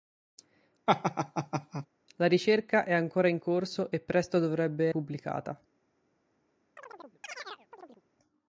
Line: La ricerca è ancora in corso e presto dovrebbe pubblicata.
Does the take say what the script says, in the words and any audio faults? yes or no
no